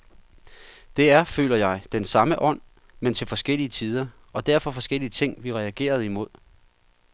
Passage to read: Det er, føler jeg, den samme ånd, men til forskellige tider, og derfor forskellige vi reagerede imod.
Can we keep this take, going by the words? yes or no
no